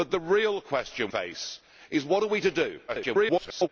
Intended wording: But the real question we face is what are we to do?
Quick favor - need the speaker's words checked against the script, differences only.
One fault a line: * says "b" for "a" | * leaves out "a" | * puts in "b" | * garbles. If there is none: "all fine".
* leaves out "we"
* garbles